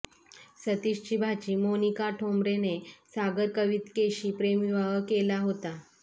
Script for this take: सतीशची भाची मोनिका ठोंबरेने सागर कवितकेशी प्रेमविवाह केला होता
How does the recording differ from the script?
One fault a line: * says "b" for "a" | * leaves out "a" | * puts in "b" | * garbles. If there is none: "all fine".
all fine